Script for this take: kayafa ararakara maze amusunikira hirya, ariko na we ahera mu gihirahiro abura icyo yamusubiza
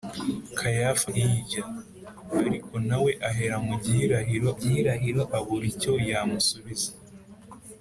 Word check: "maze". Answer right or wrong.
wrong